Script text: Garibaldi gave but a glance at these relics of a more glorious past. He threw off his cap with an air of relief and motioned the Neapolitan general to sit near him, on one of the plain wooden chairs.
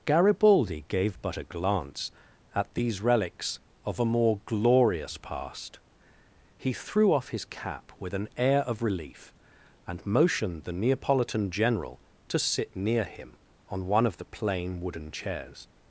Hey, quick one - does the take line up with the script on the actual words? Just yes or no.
yes